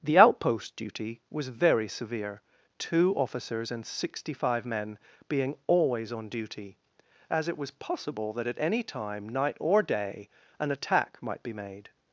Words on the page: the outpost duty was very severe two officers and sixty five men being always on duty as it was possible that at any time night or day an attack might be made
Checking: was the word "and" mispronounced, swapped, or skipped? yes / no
no